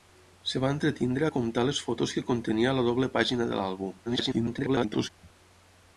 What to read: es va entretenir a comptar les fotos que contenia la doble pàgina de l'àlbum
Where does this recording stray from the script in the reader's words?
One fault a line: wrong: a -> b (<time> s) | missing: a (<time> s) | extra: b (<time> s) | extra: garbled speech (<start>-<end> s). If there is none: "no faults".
extra: garbled speech (4.1-5.1 s)